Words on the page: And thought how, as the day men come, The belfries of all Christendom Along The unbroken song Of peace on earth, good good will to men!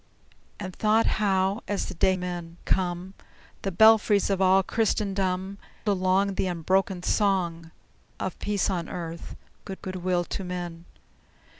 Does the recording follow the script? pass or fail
pass